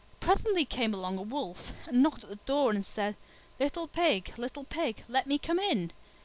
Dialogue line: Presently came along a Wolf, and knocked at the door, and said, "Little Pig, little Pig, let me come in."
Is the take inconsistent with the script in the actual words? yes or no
no